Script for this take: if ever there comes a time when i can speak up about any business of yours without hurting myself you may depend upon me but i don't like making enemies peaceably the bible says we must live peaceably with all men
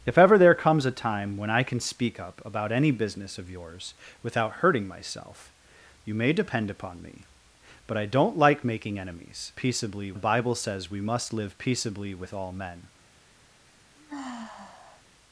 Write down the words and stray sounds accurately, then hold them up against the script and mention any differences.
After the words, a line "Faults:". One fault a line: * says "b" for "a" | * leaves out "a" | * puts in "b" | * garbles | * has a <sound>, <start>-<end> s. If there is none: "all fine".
if ever there comes a time when i can speak up about any business of yours without hurting myself you may depend upon me but i don't like making enemies peaceably the bible says we must live peaceably with all men
Faults:
* has a sigh, 14.0-15.0 s